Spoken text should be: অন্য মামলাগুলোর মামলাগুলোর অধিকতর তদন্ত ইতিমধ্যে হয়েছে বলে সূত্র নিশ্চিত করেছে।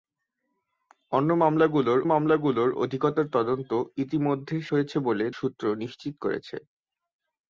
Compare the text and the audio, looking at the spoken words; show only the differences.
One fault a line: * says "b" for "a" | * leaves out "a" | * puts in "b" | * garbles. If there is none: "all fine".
all fine